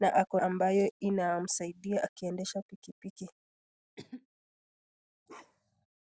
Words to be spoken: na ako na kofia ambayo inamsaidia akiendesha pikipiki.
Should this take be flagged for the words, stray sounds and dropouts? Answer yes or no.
yes